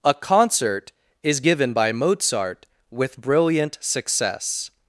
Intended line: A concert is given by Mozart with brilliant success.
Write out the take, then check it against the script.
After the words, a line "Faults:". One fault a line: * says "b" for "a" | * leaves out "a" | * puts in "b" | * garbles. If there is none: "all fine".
A concert is given by Mozart with brilliant success.
Faults:
all fine